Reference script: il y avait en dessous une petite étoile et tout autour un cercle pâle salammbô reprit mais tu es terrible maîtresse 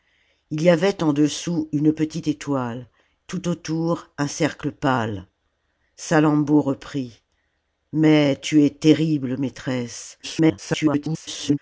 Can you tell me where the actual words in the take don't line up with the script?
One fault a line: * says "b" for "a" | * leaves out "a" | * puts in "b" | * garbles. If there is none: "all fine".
* leaves out "et"
* garbles